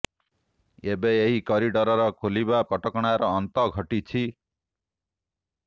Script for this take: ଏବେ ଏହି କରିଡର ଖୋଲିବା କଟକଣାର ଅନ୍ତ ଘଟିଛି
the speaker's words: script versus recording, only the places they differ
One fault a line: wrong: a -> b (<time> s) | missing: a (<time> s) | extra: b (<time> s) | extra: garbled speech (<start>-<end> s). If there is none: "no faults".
no faults